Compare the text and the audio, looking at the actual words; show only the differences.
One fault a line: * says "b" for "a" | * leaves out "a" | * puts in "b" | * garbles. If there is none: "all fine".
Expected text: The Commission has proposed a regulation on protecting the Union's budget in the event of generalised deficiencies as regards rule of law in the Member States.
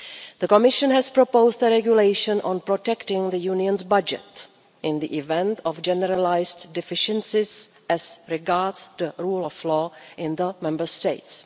* puts in "the"